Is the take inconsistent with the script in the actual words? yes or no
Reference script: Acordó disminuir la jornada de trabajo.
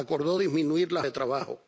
yes